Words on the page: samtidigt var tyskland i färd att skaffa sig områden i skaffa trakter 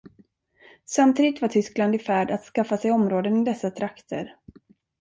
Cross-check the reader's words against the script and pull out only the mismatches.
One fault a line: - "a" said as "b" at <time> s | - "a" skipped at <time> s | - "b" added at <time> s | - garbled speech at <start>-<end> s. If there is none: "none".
- "skaffa" said as "dessa" at 3.4 s